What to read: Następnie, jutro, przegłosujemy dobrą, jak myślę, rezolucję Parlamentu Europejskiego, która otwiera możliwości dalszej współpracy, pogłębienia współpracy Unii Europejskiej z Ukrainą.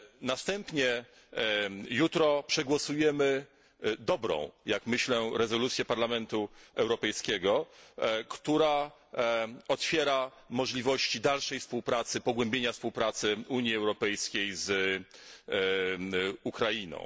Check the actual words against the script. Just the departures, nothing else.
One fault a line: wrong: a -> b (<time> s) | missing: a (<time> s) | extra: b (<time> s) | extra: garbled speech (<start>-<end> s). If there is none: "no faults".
no faults